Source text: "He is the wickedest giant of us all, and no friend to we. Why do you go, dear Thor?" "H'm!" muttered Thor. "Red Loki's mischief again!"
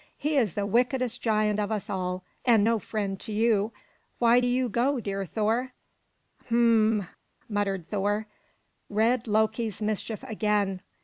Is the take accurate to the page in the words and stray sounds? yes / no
no